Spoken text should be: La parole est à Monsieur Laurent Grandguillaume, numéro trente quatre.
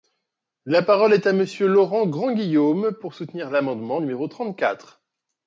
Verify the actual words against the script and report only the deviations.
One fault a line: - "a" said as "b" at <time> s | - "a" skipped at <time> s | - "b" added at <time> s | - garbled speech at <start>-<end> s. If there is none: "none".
- "pour soutenir l'amendement" added at 3.0 s